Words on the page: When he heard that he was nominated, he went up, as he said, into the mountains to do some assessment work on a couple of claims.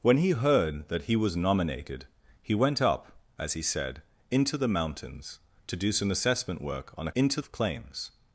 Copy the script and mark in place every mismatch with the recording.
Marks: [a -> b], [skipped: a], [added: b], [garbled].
When he heard that he was nominated, he went up, as he said, into the mountains to do some assessment work on a [couple -> into] of claims.